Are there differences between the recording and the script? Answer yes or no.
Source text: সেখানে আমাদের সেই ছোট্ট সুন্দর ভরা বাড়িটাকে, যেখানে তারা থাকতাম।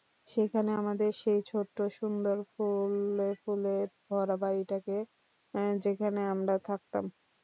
yes